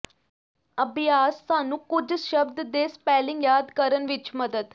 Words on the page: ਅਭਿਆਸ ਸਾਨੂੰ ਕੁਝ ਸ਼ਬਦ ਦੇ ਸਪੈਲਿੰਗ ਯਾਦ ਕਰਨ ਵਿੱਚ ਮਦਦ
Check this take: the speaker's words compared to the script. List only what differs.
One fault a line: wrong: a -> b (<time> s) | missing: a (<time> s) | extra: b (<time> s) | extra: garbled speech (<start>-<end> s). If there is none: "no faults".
no faults